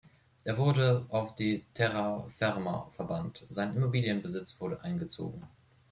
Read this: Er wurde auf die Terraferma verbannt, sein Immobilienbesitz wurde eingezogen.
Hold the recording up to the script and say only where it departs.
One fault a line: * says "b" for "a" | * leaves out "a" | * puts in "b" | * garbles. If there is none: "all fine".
all fine